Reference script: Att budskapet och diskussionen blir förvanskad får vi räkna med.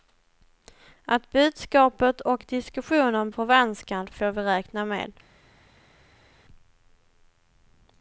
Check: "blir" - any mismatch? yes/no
yes